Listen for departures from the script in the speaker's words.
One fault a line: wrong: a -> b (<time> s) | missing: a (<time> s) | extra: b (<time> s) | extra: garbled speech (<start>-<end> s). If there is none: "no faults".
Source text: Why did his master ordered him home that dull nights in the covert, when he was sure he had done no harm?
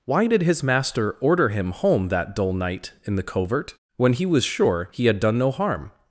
wrong: ordered -> order (1.2 s)
wrong: nights -> night (2.5 s)